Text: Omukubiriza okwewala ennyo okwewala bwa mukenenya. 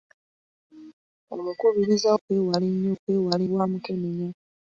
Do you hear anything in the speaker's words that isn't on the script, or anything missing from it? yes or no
no